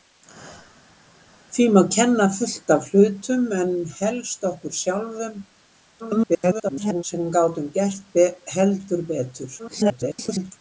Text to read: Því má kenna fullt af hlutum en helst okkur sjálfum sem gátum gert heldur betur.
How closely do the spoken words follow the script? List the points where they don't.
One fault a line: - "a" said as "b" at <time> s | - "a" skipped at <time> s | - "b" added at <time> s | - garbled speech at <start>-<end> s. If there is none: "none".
- garbled speech at 6.0-7.0 s
- garbled speech at 9.6-10.5 s